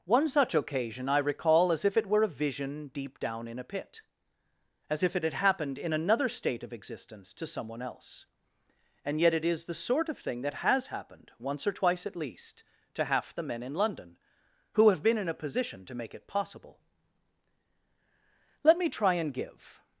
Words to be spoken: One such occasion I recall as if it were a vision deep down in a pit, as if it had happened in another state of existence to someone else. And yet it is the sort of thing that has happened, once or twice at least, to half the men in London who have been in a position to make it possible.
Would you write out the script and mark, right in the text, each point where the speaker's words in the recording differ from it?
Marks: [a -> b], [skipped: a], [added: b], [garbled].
One such occasion I recall as if it were a vision deep down in a pit, as if it had happened in another state of existence to someone else. And yet it is the sort of thing that has happened, once or twice at least, to half the men in London who have been in a position to make it possible. [added: Let me try and give]